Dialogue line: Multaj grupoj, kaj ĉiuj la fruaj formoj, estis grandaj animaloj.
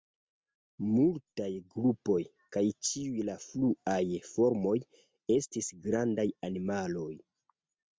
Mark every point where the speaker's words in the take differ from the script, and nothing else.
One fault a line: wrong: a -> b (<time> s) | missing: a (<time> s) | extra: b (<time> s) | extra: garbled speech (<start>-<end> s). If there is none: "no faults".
no faults